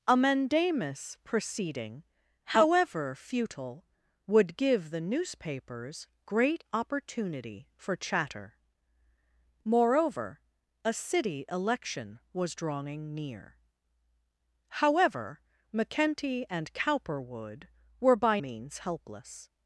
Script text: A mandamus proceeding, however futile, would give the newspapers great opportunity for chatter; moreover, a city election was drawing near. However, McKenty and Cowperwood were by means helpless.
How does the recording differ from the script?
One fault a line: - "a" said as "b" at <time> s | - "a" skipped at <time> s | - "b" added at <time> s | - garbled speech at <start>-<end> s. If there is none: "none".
none